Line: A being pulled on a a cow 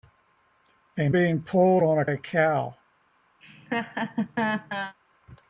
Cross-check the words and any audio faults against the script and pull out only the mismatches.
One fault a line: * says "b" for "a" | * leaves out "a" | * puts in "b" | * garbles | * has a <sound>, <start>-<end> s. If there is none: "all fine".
* has a laugh, 3.4-4.9 s